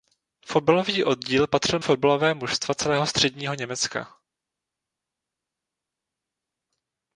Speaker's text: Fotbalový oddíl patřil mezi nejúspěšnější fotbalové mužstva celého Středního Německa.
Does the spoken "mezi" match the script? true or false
false